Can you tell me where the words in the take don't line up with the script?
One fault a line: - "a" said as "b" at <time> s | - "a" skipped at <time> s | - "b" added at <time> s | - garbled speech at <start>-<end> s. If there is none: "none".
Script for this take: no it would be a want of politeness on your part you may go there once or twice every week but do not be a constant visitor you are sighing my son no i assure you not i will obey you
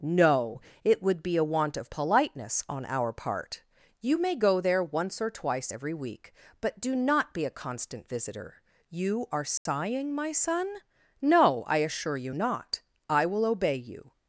- "your" said as "our" at 2.8 s